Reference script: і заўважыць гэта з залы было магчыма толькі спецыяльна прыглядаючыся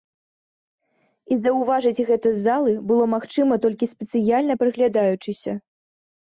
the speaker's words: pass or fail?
pass